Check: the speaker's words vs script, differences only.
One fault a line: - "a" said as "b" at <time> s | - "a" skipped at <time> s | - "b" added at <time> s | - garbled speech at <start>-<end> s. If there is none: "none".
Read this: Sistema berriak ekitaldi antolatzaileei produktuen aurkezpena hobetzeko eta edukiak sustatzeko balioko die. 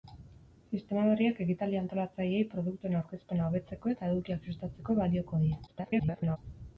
- garbled speech at 5.7-6.4 s